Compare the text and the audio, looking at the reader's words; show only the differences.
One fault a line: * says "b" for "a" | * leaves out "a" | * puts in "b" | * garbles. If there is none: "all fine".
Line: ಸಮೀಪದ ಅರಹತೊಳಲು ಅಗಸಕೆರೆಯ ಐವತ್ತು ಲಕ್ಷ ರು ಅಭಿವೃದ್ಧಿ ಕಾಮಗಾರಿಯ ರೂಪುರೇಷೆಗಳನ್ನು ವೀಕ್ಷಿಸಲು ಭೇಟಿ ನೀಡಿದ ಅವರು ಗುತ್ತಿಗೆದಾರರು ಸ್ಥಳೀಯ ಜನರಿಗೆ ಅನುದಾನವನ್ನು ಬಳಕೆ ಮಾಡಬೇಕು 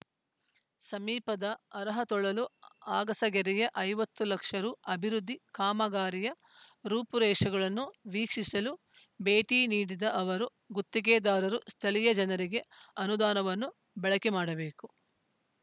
all fine